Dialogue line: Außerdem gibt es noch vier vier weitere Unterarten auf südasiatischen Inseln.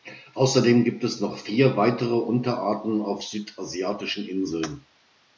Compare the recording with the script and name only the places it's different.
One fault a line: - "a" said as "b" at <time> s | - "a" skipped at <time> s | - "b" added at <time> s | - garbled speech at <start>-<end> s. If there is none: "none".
- "vier" skipped at 1.8 s